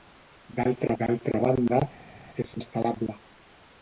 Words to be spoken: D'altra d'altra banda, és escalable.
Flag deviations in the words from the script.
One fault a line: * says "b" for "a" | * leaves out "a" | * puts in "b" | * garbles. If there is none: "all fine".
all fine